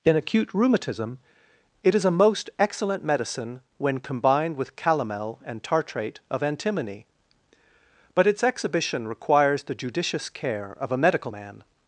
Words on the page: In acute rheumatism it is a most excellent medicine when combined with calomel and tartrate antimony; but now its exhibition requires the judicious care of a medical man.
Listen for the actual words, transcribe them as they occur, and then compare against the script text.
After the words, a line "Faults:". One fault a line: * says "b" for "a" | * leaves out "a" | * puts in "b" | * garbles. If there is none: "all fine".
In acute rheumatism it is a most excellent medicine when combined with calomel and tartrate of antimony; but its exhibition requires the judicious care of a medical man.
Faults:
* puts in "of"
* leaves out "now"